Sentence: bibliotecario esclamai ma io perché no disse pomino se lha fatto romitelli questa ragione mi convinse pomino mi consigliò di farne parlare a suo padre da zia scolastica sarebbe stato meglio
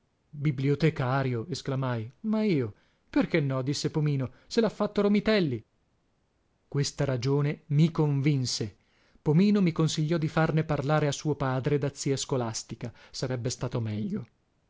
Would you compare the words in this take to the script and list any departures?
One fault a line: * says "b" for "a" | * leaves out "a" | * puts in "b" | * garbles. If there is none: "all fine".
all fine